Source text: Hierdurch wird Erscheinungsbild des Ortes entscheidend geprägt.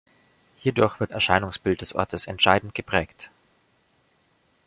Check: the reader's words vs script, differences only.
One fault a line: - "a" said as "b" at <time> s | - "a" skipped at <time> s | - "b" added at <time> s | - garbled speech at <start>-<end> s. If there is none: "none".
none